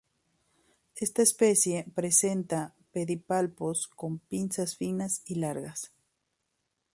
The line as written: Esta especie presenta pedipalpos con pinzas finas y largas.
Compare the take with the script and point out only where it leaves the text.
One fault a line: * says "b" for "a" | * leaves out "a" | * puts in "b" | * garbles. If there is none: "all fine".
all fine